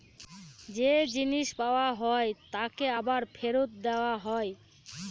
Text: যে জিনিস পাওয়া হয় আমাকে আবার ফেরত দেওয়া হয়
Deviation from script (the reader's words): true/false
true